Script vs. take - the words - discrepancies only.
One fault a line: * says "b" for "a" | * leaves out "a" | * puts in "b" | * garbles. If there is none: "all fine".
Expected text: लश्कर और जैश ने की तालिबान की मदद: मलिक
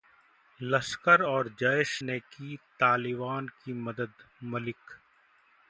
all fine